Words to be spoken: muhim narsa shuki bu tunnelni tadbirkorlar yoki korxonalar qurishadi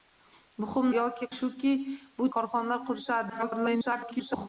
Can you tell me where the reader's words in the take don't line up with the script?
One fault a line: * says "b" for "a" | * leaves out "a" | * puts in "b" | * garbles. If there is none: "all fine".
* says "yoki" for "narsa"
* leaves out "tunnelni tadbirkorlar yoki"
* garbles